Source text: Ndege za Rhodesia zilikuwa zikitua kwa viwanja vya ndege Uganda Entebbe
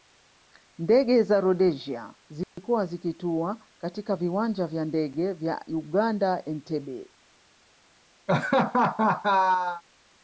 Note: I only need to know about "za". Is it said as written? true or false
true